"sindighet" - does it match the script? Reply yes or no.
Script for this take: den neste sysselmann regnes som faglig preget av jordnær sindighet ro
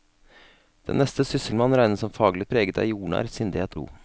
yes